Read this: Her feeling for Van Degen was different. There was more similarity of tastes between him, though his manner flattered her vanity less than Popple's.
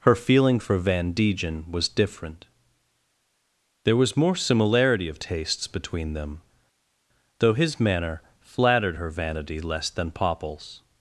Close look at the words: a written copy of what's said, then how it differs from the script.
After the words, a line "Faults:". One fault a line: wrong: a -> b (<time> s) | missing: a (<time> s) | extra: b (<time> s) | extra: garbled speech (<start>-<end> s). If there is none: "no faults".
Her feeling for Van Degen was different. There was more similarity of tastes between them, though his manner flattered her vanity less than Popple's.
Faults:
wrong: him -> them (6.1 s)